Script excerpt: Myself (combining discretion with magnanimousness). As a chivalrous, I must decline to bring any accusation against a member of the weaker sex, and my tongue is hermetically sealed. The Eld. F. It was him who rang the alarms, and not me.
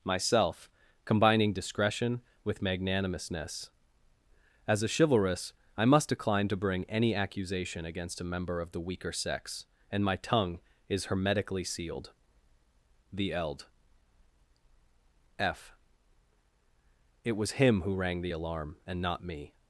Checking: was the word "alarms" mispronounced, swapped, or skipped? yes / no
yes